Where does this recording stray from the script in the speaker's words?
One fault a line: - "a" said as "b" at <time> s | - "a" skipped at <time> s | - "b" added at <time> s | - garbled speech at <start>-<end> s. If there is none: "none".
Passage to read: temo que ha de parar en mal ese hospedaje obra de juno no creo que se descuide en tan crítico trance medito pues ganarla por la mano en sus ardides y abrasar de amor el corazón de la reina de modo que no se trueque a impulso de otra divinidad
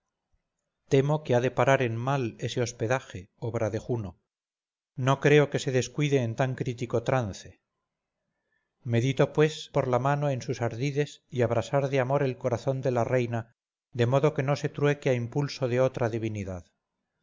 - "ganarla" skipped at 9.7 s